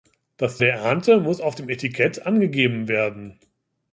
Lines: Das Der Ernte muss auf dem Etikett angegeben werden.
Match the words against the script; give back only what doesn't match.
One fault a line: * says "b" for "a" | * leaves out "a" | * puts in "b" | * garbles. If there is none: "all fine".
all fine